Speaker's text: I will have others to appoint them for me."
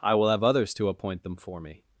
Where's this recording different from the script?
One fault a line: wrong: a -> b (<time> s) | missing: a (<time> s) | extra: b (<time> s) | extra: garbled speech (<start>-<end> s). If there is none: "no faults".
no faults